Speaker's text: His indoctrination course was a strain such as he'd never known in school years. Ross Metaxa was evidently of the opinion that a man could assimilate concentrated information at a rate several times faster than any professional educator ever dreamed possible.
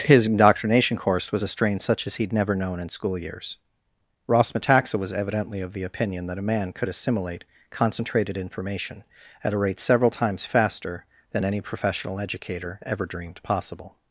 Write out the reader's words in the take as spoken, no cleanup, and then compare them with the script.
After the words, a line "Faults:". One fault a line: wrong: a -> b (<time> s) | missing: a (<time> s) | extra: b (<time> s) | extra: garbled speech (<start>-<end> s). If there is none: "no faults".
His indoctrination course was a strain such as he'd never known in school years. Ross Metaxa was evidently of the opinion that a man could assimilate concentrated information at a rate several times faster than any professional educator ever dreamed possible.
Faults:
no faults